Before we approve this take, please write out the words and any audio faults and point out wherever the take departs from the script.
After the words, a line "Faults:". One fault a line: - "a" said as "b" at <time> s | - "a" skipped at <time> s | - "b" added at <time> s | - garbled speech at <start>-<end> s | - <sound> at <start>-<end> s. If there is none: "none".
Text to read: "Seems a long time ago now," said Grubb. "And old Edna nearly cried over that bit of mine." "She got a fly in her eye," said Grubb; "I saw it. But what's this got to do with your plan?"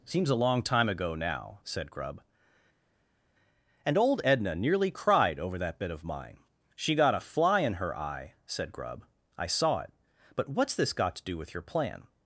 "Seems a long time ago now," said Grubb. "And old Edna nearly cried over that bit of mine." "She got a fly in her eye," said Grubb; "I saw it. But what's this got to do with your plan?"
Faults:
none